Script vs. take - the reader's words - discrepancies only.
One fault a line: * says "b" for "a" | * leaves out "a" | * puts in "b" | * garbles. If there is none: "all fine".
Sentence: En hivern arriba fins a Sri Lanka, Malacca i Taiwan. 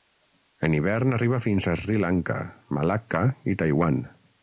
all fine